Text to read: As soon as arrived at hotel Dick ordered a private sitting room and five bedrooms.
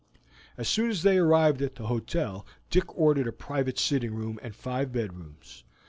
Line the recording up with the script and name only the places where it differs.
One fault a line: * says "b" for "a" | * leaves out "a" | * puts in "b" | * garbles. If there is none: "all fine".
* puts in "they"
* puts in "the"